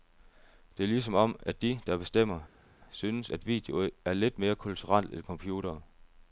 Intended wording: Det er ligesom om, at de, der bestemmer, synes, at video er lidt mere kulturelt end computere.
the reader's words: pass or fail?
pass